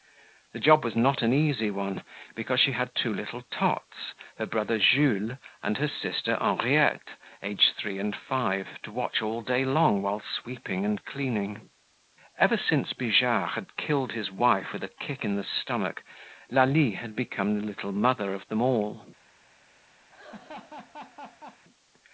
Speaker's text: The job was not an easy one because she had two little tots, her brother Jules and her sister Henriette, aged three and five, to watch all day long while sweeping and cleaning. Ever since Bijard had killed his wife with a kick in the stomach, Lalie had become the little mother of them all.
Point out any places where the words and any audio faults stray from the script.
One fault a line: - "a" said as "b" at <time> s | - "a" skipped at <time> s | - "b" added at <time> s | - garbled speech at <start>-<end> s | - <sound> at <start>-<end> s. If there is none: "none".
- laugh at 20.1-21.6 s